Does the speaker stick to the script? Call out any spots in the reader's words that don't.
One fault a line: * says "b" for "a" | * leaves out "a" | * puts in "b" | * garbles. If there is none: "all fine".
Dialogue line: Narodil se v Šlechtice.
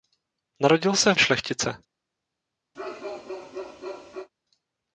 all fine